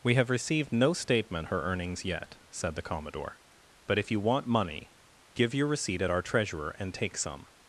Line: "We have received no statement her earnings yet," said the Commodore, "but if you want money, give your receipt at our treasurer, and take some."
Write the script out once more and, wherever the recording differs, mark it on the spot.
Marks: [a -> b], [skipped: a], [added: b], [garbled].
"We have received no statement her earnings yet," said the Commodore, "but if you want money, give your receipt at our treasurer, and take some."